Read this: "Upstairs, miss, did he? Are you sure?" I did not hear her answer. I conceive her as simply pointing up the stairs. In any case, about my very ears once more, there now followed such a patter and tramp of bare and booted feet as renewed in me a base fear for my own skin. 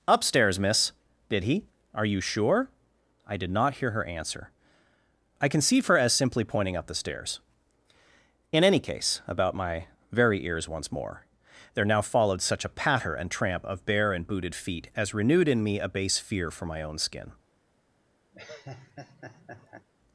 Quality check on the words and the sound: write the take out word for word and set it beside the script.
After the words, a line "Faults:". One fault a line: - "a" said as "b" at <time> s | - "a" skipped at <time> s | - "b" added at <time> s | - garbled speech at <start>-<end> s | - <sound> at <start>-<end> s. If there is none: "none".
"Upstairs, miss, did he? Are you sure?" I did not hear her answer. I conceive her as simply pointing up the stairs. In any case, about my very ears once more, there now followed such a patter and tramp of bare and booted feet as renewed in me a base fear for my own skin.
Faults:
- laugh at 18.3-19.9 s